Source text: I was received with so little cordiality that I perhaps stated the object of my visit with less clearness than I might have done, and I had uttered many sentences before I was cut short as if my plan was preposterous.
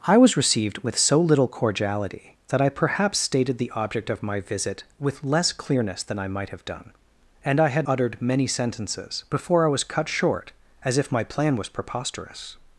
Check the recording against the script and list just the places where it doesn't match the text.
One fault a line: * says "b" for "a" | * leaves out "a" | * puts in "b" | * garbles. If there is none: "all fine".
all fine